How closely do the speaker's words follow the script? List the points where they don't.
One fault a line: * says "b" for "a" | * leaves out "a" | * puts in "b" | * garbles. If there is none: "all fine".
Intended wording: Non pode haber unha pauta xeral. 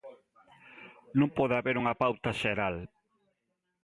all fine